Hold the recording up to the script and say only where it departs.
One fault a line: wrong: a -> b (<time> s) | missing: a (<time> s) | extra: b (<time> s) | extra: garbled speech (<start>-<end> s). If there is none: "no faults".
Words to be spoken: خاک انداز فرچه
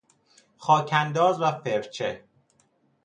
extra: و (1.4 s)